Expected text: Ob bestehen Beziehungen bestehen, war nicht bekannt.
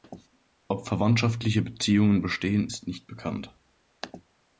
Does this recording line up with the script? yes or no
no